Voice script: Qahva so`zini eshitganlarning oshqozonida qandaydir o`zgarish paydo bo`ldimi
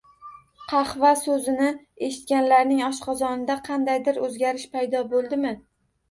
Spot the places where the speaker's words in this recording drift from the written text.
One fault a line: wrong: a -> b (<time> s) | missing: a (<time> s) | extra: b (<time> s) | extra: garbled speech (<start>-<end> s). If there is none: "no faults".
no faults